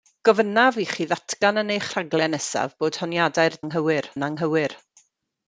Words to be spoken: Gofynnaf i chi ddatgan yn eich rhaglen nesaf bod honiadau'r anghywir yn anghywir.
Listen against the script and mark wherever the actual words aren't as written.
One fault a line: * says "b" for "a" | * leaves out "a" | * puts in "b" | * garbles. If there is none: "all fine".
all fine